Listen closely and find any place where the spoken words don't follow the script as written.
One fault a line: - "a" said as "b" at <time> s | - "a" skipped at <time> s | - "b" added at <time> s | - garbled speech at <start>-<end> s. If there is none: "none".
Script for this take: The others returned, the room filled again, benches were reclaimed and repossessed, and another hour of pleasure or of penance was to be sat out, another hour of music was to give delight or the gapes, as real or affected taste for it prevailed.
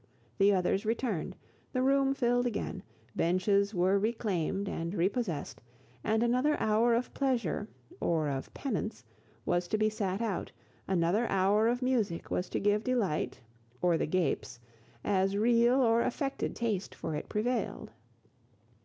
none